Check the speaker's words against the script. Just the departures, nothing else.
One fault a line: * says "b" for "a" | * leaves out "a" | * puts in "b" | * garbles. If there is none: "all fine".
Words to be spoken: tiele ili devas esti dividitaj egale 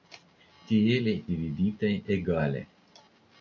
* leaves out "ili devas esti"